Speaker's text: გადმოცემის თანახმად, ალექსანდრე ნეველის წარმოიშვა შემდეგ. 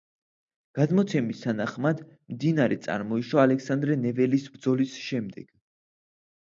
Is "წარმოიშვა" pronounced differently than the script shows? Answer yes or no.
yes